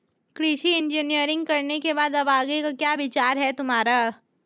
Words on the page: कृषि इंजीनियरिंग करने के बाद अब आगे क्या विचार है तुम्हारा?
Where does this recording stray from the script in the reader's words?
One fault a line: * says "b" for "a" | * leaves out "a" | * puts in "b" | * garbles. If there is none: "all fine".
* puts in "का"